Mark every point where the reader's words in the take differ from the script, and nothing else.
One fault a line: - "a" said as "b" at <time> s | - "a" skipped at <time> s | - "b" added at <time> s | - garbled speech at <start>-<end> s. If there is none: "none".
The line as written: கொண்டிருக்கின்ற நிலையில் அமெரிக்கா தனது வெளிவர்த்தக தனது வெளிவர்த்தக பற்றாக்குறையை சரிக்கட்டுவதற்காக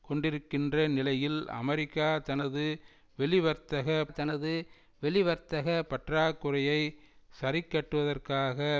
none